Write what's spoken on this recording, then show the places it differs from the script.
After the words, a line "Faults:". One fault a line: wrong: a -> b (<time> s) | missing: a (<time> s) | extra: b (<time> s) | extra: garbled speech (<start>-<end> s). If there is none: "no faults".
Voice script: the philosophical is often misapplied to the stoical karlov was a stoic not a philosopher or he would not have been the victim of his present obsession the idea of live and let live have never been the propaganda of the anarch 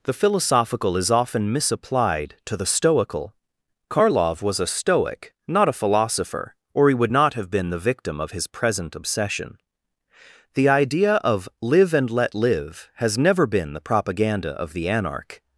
the philosophical is often misapplied to the stoical karlov was a stoic not a philosopher or he would not have been the victim of his present obsession the idea of live and let live has never been the propaganda of the anarch
Faults:
wrong: have -> has (12.9 s)